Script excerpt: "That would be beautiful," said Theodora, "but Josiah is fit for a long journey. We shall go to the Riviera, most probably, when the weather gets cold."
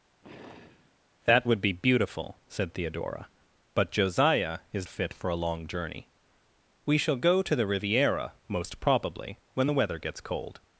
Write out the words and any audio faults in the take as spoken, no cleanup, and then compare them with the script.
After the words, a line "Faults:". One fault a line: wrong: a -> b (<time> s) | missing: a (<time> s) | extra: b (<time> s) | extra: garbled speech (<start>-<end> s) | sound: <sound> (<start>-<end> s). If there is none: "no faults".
"That would be beautiful," said Theodora, "but Josiah is fit for a long journey. We shall go to the Riviera, most probably, when the weather gets cold."
Faults:
sound: sigh (0.2-1.0 s)